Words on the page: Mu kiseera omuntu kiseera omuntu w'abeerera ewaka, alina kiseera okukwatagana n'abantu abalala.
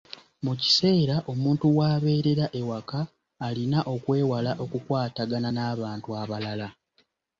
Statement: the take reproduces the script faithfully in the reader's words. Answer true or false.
false